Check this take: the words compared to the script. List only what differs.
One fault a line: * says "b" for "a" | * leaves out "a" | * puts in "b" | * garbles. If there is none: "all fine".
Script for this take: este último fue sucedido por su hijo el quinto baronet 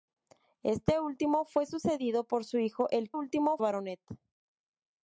* says "último" for "quinto"